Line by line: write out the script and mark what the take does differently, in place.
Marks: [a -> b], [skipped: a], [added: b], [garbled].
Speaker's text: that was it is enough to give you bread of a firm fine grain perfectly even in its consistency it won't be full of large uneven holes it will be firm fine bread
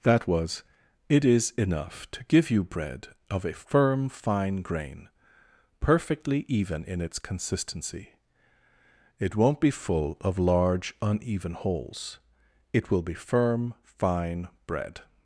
that was it is enough to give you bread of a firm fine grain perfectly even in its consistency it won't be full of large uneven holes it will be firm fine bread